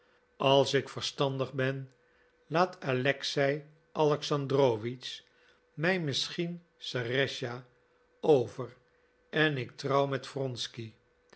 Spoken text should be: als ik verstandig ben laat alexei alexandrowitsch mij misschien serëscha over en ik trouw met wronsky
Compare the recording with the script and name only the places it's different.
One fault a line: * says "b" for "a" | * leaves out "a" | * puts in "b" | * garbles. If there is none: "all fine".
all fine